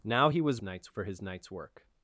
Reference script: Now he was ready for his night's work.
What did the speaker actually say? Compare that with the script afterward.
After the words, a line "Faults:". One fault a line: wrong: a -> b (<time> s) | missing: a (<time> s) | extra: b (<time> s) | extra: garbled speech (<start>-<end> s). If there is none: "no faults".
Now he was night's for his night's work.
Faults:
wrong: ready -> night's (0.6 s)